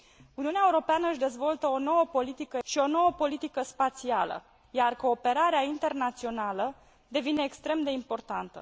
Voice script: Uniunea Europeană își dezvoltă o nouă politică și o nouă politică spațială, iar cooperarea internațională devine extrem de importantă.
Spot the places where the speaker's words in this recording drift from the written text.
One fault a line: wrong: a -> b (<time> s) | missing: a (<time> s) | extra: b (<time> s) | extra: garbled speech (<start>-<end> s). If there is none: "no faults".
no faults